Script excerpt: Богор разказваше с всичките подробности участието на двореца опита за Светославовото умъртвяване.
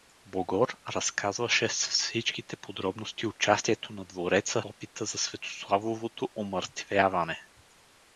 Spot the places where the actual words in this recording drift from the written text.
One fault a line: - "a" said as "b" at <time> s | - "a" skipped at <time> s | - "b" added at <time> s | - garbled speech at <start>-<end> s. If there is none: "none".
none